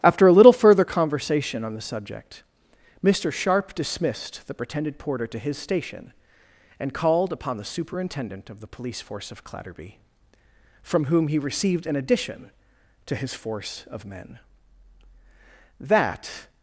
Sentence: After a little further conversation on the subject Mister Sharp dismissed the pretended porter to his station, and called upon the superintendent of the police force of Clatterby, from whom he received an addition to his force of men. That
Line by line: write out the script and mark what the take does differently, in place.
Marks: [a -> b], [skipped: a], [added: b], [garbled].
After a little further conversation on the subject Mister Sharp dismissed the pretended porter to his station, and called upon the superintendent of the police force of Clatterby, from whom he received an addition to his force of men. That